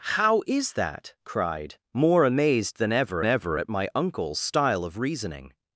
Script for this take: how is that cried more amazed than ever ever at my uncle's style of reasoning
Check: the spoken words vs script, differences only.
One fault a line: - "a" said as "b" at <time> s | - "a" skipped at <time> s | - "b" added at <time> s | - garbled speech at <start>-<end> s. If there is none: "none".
none